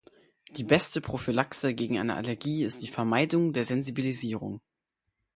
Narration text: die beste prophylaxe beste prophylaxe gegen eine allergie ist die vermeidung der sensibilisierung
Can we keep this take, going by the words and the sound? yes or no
no